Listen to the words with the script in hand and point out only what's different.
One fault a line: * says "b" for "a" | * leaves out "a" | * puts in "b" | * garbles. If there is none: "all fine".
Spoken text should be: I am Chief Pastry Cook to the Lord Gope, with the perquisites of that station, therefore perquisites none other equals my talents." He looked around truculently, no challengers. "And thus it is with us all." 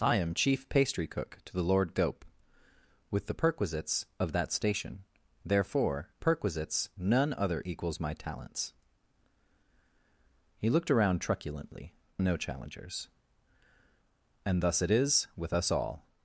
all fine